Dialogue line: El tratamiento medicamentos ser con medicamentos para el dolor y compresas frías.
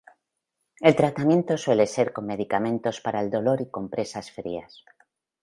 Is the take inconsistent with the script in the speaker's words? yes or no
yes